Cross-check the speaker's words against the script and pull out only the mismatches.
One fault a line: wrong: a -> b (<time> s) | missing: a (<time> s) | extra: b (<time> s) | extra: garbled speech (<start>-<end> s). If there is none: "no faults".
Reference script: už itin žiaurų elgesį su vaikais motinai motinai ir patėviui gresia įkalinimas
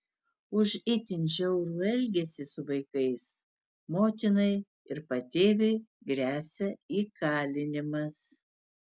missing: motinai (4.5 s)